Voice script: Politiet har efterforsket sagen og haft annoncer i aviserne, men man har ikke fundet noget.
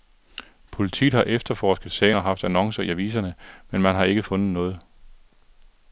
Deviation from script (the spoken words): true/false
false